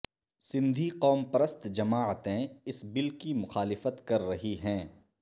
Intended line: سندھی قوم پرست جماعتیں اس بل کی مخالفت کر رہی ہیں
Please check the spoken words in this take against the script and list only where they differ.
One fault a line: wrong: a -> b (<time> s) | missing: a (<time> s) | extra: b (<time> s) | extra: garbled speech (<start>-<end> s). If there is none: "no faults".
no faults